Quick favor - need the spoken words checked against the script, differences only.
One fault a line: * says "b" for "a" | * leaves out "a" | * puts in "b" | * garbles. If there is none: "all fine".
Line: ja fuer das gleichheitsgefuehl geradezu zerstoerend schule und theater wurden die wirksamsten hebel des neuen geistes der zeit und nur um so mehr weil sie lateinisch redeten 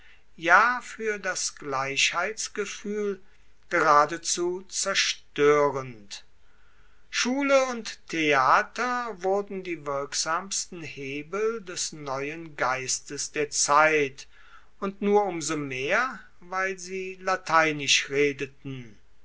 all fine